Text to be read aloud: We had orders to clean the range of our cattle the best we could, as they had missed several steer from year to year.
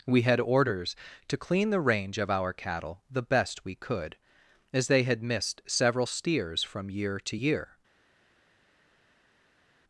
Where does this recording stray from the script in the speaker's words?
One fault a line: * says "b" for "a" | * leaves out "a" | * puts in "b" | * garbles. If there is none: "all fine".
* says "steers" for "steer"